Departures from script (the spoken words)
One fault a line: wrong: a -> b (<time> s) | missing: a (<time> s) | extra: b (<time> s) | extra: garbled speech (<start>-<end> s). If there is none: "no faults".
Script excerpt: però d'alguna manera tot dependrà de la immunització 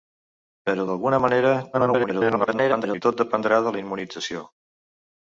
extra: garbled speech (1.7-3.0 s)